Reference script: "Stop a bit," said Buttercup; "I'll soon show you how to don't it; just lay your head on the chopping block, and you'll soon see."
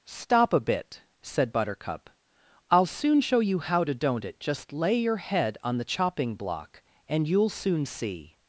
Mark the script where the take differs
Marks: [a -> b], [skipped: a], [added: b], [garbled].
"Stop a bit," said Buttercup; "I'll soon show you how to don't it; just lay your head on the chopping block, and you'll soon see."